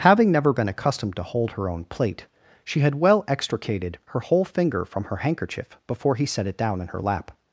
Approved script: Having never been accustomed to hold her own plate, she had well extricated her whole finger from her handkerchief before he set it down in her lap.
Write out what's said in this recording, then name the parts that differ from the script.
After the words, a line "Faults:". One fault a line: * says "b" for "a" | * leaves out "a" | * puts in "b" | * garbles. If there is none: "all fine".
Having never been accustomed to hold her own plate, she had well extricated her whole finger from her handkerchief before he set it down in her lap.
Faults:
all fine